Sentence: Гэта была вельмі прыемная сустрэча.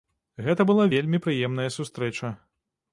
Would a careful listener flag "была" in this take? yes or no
no